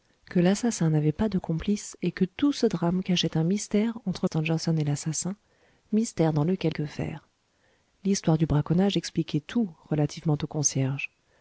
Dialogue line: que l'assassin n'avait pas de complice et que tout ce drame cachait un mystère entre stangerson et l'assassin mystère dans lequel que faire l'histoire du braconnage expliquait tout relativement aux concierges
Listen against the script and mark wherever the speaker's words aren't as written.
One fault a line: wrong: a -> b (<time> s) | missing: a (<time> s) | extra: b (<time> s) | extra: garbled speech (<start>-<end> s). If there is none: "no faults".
no faults